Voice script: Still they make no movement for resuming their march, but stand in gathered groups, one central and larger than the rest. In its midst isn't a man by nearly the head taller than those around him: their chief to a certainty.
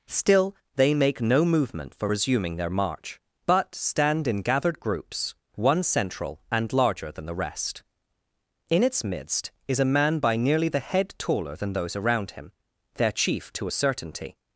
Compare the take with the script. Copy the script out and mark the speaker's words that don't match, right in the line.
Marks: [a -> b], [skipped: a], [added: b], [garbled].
Still they make no movement for resuming their march, but stand in gathered groups, one central and larger than the rest. In its midst [isn't -> is] a man by nearly the head taller than those around him: their chief to a certainty.